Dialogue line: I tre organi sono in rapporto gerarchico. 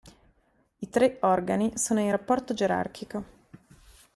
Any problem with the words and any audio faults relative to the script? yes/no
no